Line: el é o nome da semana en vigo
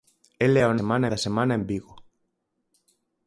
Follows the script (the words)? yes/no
no